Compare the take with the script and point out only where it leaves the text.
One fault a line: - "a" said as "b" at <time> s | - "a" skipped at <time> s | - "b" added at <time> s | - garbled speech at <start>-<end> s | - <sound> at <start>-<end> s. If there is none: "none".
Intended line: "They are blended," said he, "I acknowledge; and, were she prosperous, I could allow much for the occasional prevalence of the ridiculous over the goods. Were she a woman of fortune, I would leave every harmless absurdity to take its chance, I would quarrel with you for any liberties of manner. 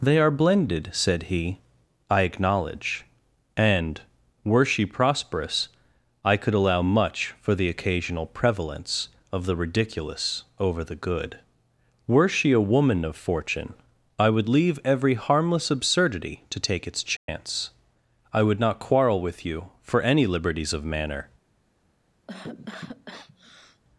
- "goods" said as "good" at 10.9 s
- dropout at 17.2-17.3 s
- "not" added at 18.6 s
- cough at 22.3-23.8 s